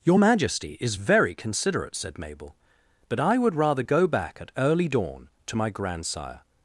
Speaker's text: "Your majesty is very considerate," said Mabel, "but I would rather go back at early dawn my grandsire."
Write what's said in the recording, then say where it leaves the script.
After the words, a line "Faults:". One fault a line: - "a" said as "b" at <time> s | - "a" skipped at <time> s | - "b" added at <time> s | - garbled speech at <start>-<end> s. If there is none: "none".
"Your majesty is very considerate," said Mabel, "but I would rather go back at early dawn to my grandsire."
Faults:
- "to" added at 5.5 s